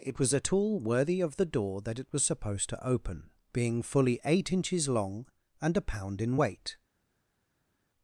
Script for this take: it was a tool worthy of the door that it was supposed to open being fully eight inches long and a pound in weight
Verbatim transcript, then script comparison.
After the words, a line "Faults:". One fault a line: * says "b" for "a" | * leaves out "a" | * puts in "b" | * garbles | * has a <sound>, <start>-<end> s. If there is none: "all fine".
it was a tool worthy of the door that it was supposed to open being fully eight inches long and a pound in weight
Faults:
all fine